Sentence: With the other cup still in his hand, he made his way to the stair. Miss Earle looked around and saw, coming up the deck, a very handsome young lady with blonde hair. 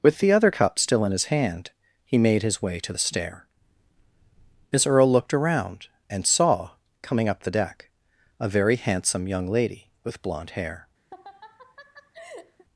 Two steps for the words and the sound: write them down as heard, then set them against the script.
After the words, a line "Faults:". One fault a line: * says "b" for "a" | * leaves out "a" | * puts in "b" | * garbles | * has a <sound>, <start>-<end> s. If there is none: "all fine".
With the other cup still in his hand, he made his way to the stair. Miss Earle looked around and saw, coming up the deck, a very handsome young lady with blonde hair.
Faults:
* has a laugh, 11.1-12.7 s